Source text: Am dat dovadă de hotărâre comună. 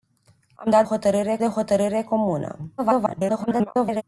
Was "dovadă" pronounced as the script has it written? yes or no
no